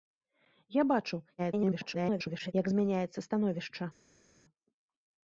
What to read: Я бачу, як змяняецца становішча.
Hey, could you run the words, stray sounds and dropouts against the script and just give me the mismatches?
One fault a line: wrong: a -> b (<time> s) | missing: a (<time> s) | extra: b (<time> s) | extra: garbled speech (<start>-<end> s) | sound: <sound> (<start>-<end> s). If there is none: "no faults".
extra: garbled speech (1.4-2.5 s)